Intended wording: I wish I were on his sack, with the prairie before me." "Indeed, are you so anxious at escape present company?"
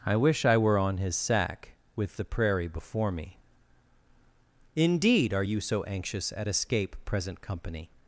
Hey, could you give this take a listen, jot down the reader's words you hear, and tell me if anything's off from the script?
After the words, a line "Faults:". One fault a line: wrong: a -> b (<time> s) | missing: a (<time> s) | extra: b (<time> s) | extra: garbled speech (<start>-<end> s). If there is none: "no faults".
I wish I were on his sack, with the prairie before me." "Indeed, are you so anxious at escape present company?"
Faults:
no faults